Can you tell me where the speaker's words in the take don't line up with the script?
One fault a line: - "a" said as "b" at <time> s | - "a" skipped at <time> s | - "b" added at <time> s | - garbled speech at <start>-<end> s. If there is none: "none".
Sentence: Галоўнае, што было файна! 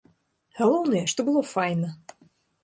none